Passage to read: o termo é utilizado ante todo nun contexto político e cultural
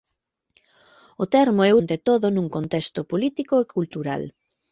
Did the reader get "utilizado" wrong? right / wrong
wrong